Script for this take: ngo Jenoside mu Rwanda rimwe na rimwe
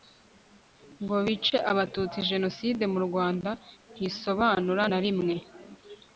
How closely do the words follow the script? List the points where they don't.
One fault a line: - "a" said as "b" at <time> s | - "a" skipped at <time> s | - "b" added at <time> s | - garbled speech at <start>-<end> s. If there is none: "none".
- "bice Abatutsi" added at 1.2 s
- "rimwe" said as "ntisobanura" at 4.0 s